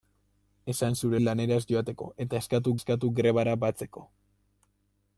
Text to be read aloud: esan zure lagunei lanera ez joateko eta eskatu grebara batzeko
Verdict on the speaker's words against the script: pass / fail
fail